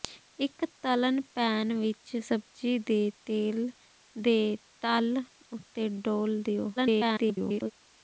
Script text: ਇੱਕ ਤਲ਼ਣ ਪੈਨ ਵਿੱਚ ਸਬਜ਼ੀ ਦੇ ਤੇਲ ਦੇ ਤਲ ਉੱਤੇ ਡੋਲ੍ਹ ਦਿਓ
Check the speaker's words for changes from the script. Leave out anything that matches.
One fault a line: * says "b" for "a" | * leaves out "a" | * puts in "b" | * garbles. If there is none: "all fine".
* garbles